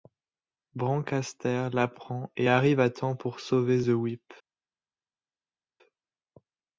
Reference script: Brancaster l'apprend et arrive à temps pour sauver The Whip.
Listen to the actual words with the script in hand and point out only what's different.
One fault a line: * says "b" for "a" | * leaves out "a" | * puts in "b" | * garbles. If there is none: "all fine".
all fine